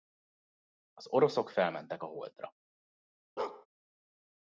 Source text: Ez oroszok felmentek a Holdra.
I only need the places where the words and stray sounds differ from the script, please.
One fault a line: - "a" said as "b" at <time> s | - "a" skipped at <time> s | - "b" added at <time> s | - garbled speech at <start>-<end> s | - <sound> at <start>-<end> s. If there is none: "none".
- "Ez" said as "Az" at 0.9 s
- bark at 3.4-3.7 s